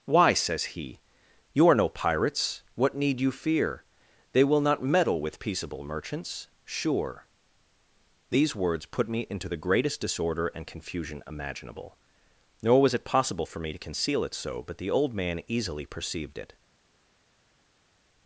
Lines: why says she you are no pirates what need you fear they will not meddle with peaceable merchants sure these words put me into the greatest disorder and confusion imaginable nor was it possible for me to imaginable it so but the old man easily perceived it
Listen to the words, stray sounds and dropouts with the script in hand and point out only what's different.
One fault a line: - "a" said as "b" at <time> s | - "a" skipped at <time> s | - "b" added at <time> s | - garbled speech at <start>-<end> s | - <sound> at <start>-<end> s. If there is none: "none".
- "she" said as "he" at 0.8 s
- "imaginable" said as "conceal" at 13.8 s